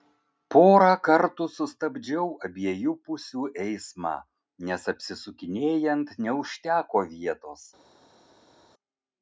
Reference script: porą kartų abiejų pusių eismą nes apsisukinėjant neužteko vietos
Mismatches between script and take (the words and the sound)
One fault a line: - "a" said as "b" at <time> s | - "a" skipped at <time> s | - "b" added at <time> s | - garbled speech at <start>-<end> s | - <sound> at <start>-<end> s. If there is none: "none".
- "sustabdžiau" added at 1.6 s